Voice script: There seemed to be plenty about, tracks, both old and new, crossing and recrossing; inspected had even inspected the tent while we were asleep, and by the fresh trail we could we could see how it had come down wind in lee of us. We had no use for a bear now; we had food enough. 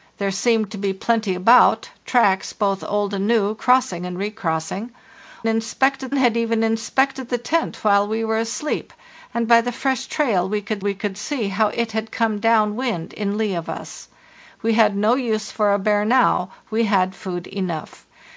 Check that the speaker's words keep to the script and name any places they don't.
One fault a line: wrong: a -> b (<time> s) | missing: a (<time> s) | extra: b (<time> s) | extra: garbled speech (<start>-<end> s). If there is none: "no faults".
no faults